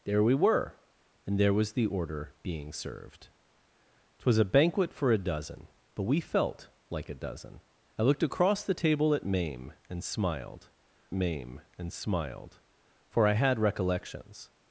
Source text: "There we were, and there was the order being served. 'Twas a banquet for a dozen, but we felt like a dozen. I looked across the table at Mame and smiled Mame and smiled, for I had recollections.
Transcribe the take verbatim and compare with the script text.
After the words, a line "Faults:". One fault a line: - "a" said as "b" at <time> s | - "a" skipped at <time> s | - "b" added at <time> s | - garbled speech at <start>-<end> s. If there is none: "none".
"There we were, and there was the order being served. 'Twas a banquet for a dozen, but we felt like a dozen. I looked across the table at Mame and smiled Mame and smiled, for I had recollections.
Faults:
none